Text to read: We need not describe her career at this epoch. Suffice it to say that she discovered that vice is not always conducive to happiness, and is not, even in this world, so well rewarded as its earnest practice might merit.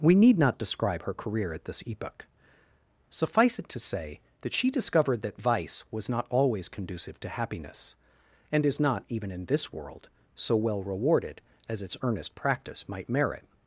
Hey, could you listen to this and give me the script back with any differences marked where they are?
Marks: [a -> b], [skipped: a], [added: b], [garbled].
We need not describe her career at this epoch. Suffice it to say that she discovered that vice [is -> was] not always conducive to happiness, and is not, even in this world, so well rewarded as its earnest practice might merit.